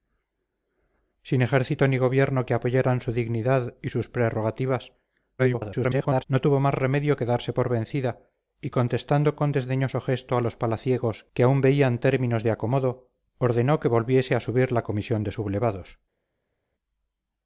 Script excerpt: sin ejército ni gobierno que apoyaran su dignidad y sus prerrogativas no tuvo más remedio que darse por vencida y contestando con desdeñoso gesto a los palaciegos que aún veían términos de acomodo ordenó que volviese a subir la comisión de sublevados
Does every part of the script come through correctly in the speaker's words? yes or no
no